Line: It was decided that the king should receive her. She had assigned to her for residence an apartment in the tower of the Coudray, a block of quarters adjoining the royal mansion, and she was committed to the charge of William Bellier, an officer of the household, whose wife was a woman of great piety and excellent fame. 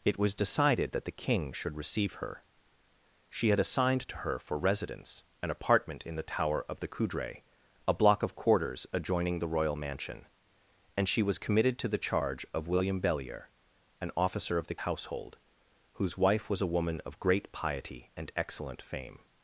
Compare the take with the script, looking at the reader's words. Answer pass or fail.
pass